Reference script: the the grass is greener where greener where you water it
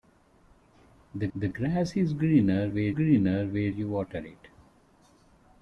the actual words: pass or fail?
pass